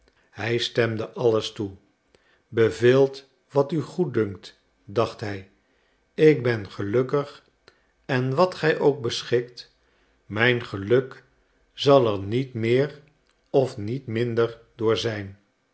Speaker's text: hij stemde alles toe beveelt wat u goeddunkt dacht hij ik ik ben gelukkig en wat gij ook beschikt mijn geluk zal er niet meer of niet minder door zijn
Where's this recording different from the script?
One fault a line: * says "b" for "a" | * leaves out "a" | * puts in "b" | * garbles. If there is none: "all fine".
* leaves out "ik"